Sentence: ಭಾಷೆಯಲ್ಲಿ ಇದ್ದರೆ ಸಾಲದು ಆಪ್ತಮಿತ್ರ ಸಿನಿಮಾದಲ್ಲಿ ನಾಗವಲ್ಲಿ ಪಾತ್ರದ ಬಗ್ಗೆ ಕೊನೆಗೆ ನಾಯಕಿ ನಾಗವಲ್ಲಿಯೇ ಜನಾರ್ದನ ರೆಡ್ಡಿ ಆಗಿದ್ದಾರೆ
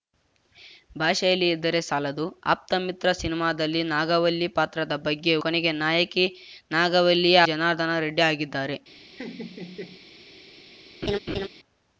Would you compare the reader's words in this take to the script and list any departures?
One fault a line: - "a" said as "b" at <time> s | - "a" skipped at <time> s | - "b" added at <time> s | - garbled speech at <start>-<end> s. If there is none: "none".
none